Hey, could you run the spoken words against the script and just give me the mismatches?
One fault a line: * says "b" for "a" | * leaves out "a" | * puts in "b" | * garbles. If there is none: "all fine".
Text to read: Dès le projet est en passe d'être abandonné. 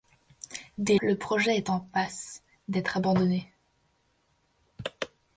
all fine